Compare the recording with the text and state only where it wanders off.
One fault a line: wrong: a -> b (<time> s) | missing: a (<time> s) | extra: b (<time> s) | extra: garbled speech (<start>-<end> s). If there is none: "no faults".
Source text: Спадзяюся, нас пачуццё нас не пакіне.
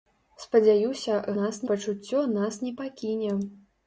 no faults